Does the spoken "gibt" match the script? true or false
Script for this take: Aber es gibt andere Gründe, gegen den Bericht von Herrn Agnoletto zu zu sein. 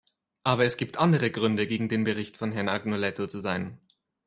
true